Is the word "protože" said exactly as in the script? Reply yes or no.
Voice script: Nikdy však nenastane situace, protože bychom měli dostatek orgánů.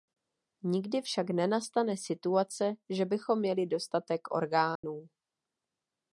no